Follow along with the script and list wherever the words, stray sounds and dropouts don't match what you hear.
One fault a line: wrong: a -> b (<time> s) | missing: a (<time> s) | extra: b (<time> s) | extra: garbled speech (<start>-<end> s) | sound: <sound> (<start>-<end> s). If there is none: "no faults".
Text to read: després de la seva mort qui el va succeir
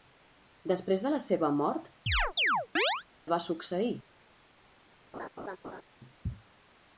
missing: qui (1.9 s)
sound: chirp (2.1-3.0 s)
sound: laugh (5.1-5.8 s)